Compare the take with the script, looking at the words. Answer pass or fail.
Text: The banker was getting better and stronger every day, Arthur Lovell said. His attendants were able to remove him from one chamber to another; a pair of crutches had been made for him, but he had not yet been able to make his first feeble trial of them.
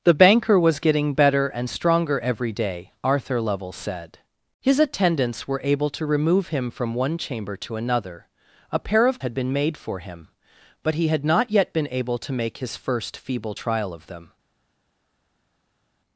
fail